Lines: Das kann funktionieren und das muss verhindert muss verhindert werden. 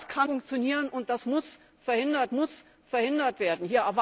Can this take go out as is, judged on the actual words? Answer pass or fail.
pass